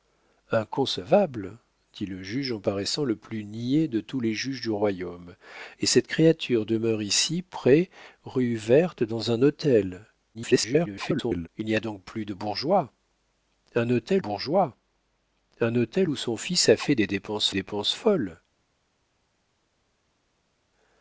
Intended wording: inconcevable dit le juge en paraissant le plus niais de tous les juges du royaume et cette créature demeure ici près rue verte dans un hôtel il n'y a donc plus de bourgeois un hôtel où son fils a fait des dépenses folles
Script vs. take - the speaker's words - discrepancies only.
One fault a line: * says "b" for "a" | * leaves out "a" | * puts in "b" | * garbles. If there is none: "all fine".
* garbles
* puts in "bourgeois un hôtel"
* puts in "dépenses"